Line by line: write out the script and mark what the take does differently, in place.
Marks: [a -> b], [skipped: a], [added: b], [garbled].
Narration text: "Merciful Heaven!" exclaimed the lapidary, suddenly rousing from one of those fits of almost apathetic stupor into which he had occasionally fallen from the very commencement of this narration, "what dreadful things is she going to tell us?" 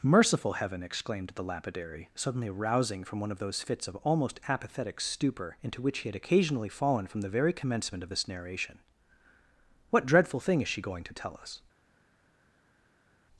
"Merciful Heaven!" exclaimed the lapidary, suddenly rousing from one of those fits of almost apathetic stupor into which he had occasionally fallen from the very commencement of this narration, "what dreadful [things -> thing] is she going to tell us?"